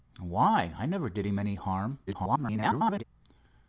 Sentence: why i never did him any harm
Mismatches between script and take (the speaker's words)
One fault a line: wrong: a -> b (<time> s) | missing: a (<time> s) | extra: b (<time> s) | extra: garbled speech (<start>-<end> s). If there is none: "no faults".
extra: garbled speech (2.1-3.0 s)